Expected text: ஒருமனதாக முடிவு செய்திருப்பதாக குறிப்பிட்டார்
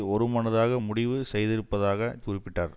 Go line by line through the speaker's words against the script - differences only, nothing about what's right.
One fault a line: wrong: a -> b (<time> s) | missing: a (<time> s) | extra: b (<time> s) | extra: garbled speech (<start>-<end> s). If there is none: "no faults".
no faults